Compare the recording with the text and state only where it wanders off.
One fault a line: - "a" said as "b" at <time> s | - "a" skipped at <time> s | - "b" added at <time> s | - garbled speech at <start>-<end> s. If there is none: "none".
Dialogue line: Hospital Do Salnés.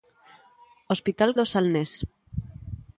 none